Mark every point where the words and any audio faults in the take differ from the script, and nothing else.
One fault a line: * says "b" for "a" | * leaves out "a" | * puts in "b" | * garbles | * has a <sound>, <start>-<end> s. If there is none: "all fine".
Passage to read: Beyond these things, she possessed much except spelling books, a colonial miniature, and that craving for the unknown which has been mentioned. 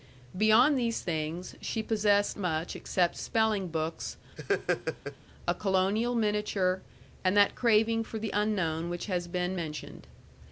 * has a laugh, 4.4-5.2 s